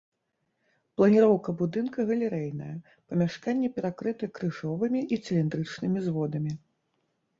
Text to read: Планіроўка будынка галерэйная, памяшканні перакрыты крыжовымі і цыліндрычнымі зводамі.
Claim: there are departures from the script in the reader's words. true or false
false